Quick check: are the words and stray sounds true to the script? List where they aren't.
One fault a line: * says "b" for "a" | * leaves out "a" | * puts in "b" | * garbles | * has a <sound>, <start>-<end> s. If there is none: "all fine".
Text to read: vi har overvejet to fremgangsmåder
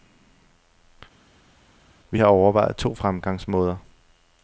all fine